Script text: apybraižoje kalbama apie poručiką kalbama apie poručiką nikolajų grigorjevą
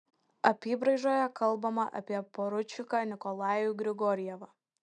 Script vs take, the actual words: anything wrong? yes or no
yes